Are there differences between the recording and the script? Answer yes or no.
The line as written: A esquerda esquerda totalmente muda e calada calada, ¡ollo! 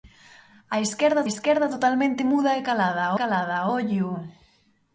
no